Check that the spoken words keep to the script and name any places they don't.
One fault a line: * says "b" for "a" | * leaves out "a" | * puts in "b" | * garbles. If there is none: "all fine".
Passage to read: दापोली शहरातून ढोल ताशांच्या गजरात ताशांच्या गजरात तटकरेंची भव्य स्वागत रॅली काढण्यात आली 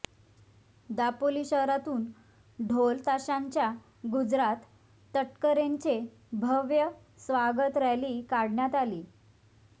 * leaves out "ताशांच्या गजरात"